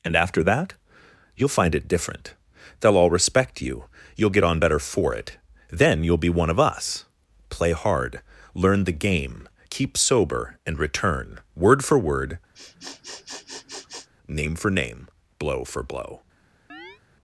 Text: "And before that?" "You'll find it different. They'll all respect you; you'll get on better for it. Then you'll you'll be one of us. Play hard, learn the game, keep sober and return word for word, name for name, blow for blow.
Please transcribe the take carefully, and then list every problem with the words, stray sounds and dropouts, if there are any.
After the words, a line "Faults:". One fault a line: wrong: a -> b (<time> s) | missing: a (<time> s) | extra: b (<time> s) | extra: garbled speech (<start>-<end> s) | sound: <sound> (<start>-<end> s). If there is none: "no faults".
"And after that?" "You'll find it different. They'll all respect you; you'll get on better for it. Then you'll be one of us. Play hard, learn the game, keep sober and return word for word, name for name, blow for blow.
Faults:
wrong: before -> after (0.1 s)
missing: you'll (6.2 s)
sound: sniff (12.5-14.1 s)
sound: chirp (16.7-17.0 s)